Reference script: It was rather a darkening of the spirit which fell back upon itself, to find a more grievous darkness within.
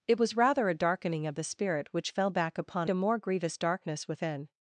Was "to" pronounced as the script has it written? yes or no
no